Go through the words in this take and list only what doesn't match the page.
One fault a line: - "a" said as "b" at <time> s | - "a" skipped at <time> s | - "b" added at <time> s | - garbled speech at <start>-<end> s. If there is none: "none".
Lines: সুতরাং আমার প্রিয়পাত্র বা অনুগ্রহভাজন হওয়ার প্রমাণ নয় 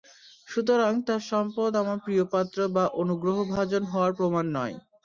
- "তার সম্পদ" added at 1.1 s